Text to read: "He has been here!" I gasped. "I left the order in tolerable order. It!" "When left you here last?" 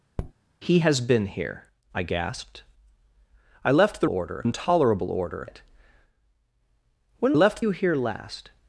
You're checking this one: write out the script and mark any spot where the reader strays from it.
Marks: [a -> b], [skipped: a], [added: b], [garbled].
"He has been here!" I gasped. "I left the order in tolerable order. It!" "When left you here last?"